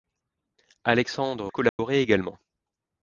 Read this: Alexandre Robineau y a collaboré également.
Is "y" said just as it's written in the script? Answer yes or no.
no